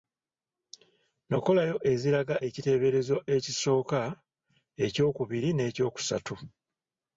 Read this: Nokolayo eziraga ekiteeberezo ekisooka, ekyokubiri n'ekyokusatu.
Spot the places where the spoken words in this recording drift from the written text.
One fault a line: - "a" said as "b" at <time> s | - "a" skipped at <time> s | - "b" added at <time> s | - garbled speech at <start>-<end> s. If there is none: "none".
none